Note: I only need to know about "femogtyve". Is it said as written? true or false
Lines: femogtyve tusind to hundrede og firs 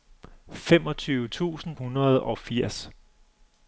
true